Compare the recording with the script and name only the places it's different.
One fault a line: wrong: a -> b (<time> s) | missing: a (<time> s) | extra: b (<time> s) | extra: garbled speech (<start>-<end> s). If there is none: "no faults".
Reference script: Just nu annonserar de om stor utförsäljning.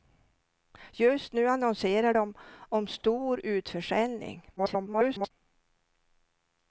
extra: garbled speech (4.6-5.3 s)